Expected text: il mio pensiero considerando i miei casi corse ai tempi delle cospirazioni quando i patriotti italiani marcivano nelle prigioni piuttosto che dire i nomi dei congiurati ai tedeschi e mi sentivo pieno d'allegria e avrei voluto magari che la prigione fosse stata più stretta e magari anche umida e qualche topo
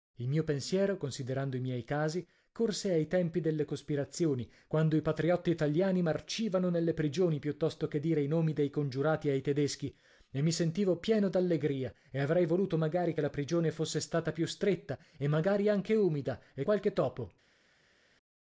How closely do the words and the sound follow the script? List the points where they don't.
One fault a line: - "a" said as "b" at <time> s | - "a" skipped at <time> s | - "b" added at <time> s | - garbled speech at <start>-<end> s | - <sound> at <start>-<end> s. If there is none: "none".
none